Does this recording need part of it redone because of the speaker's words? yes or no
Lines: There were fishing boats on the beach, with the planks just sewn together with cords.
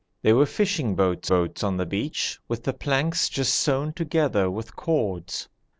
yes